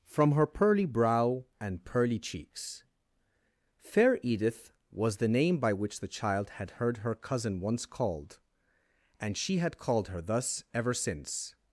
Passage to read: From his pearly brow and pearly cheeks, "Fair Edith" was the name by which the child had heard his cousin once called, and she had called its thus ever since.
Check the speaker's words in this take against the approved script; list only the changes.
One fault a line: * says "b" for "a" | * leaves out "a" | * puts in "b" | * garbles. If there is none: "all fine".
* says "her" for "his"
* says "her" for "his"
* says "her" for "its"